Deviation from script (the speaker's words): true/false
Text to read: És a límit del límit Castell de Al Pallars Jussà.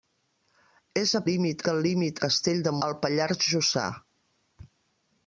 false